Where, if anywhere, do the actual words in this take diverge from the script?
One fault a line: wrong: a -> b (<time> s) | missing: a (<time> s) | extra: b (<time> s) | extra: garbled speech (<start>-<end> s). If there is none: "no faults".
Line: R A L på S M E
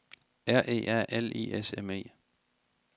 extra: E (0.7 s)
wrong: på -> I (1.4 s)